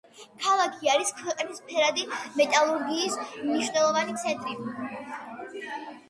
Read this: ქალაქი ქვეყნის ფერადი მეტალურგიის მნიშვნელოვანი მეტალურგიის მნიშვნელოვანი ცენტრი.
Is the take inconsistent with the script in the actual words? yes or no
yes